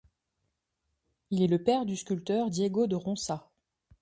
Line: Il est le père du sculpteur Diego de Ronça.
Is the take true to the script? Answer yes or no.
yes